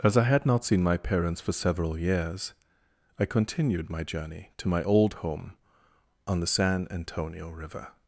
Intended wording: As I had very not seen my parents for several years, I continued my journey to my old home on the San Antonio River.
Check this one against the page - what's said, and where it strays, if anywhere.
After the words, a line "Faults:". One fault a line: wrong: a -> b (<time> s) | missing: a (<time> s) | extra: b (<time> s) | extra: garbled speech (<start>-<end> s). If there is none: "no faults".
As I had not seen my parents for several years, I continued my journey to my old home on the San Antonio River.
Faults:
missing: very (0.5 s)